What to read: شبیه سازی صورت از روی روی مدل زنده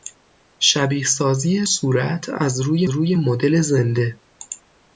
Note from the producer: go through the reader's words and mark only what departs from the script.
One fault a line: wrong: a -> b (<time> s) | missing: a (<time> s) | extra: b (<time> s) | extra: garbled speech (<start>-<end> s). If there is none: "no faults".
no faults